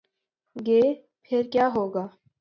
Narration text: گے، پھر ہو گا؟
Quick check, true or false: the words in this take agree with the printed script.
false